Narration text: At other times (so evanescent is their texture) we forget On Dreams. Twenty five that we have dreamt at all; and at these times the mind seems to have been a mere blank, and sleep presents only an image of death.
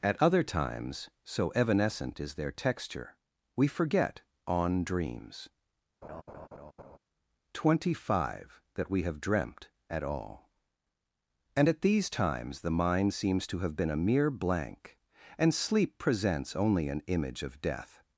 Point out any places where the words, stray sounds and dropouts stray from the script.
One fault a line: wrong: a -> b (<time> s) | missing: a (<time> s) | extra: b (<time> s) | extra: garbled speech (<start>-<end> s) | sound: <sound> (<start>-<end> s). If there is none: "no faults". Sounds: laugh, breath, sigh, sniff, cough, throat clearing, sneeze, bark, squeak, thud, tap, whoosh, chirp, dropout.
sound: laugh (6.0-7.0 s)